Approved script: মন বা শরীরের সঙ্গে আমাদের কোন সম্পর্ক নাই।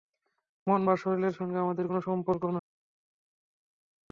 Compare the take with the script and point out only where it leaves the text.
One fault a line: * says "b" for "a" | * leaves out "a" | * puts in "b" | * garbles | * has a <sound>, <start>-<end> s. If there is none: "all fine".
all fine